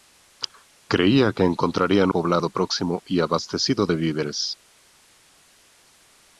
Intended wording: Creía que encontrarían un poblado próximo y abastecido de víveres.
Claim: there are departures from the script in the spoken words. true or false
true